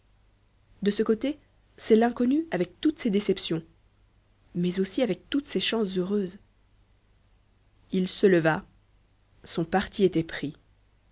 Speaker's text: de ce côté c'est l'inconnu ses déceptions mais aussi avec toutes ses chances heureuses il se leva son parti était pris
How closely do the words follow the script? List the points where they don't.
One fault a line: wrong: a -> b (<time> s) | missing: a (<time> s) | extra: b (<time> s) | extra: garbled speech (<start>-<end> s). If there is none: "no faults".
extra: avec toutes (2.5 s)